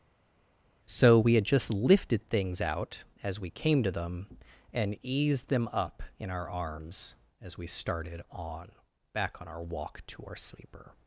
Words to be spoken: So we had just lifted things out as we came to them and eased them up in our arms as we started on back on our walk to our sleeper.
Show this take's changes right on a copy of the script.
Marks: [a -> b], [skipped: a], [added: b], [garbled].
So we had just lifted things out as we came to them and eased them up in our arms as we started on back on our walk to our sleeper.